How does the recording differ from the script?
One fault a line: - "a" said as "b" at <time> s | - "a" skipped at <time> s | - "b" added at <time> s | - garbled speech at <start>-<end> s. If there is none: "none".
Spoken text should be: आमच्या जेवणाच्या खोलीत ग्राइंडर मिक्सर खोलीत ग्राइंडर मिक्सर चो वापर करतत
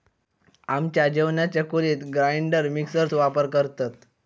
- "खोलीत ग्राइंडर मिक्सर" skipped at 3.1 s